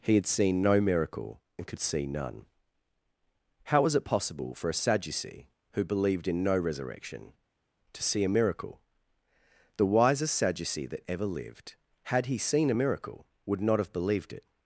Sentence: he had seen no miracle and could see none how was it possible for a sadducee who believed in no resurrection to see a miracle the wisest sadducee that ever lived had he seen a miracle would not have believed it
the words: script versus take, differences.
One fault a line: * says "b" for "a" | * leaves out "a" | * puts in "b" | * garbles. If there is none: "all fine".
all fine